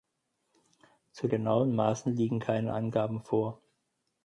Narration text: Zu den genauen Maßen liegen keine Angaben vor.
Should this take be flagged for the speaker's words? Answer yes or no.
yes